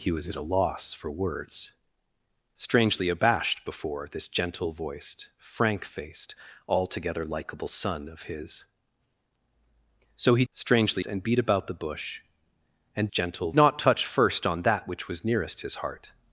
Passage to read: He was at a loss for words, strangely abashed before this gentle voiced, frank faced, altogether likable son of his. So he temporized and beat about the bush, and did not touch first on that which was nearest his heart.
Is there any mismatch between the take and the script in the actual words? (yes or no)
yes